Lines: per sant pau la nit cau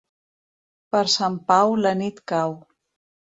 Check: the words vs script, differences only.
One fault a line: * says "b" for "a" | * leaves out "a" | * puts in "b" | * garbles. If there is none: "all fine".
all fine